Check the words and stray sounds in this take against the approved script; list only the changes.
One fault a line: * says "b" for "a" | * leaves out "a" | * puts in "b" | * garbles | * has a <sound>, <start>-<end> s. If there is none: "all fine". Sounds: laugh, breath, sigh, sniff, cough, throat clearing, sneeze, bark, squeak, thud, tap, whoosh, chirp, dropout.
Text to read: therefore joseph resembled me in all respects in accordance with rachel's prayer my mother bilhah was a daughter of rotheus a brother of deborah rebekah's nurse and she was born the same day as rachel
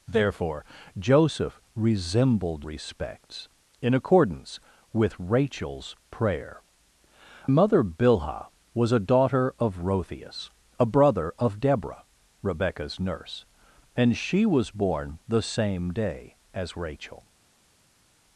* leaves out "me in all"
* leaves out "my"